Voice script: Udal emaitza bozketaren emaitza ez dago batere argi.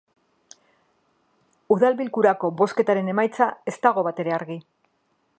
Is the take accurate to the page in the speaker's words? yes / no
no